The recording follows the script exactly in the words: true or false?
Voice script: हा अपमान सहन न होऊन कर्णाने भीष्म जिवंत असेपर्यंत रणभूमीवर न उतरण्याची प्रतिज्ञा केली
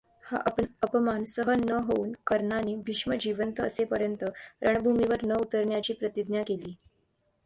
true